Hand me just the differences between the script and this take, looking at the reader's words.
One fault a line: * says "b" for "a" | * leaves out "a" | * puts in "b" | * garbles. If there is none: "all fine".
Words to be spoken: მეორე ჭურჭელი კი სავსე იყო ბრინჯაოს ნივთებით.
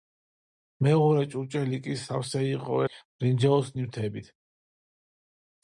all fine